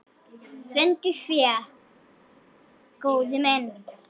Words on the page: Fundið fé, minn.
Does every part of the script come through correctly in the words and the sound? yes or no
no